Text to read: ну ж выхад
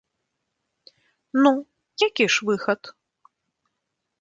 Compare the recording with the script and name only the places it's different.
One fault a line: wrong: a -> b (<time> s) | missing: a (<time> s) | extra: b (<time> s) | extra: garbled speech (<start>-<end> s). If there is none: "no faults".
extra: які (2.1 s)